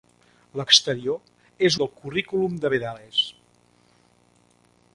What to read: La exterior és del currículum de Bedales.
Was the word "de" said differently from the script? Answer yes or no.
no